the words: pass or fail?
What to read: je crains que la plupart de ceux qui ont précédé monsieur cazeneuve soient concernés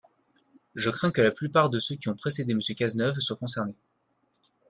pass